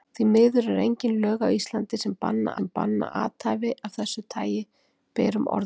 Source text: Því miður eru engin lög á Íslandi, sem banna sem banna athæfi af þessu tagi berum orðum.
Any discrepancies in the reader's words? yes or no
no